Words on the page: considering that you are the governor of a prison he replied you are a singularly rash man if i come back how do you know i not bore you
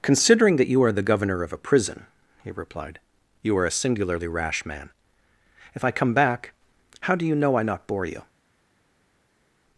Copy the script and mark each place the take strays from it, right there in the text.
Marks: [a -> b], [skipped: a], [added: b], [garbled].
considering that you are the governor of a prison he replied you are a singularly rash man if i come back how do you know i not bore you